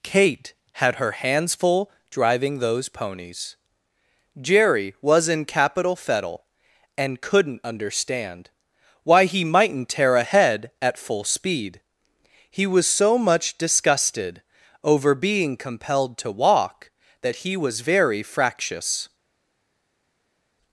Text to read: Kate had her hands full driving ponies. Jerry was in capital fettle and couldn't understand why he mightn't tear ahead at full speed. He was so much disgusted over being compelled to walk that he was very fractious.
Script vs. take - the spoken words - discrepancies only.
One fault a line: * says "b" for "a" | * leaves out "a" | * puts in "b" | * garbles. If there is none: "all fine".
* puts in "those"